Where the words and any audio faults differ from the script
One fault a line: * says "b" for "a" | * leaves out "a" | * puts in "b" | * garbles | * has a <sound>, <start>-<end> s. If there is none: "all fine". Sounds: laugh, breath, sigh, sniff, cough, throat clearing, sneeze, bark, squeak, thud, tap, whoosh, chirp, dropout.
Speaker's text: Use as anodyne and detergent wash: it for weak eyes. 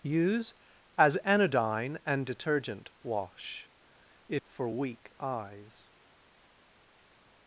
all fine